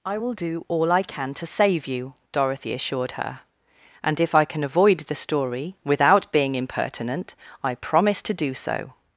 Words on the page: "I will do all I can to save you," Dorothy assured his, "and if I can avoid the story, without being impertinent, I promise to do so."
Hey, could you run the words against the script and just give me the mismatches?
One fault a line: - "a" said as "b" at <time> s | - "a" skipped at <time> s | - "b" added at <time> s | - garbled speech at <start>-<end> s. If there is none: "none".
- "his" said as "her" at 3.1 s